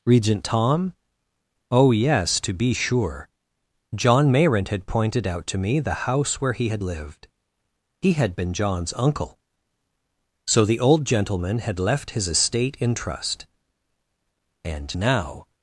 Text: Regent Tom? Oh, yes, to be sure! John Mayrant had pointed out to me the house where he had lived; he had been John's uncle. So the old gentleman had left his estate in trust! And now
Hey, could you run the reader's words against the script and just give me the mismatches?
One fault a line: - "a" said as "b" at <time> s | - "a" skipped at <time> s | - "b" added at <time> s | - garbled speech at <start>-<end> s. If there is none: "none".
none